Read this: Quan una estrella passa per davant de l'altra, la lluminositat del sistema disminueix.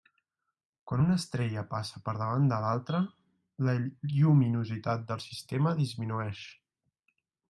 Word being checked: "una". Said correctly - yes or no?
yes